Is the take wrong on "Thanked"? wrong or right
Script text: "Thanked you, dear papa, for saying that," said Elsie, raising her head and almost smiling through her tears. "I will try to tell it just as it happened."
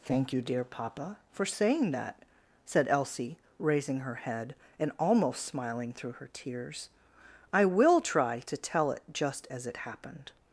wrong